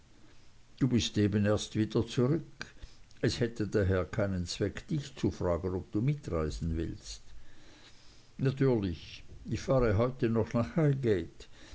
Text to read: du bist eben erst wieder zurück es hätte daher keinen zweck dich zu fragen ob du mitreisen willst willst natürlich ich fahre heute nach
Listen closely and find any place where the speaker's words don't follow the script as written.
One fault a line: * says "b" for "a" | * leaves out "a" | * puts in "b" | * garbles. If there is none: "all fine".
* leaves out "willst"
* puts in "noch"